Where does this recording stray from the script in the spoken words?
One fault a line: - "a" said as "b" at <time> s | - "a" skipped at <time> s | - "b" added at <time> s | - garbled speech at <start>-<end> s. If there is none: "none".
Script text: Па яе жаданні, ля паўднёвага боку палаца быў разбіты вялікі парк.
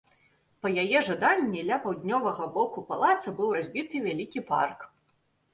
none